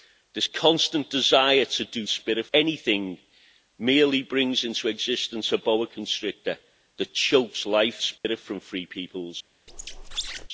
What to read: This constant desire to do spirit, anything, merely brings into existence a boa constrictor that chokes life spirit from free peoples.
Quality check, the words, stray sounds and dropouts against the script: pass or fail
fail